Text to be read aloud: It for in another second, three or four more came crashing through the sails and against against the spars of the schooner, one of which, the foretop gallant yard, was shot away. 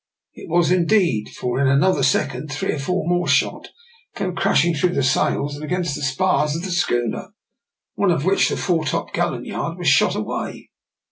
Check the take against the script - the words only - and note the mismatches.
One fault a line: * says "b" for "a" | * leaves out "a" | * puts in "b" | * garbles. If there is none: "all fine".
* puts in "was indeed"
* puts in "shot"
* leaves out "against"